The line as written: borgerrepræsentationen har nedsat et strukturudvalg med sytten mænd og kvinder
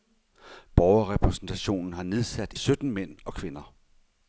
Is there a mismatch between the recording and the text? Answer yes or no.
yes